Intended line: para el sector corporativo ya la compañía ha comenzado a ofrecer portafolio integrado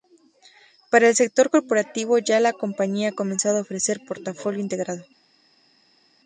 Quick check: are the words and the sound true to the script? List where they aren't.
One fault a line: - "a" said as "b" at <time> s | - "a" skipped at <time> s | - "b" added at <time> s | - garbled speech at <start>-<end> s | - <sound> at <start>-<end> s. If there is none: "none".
none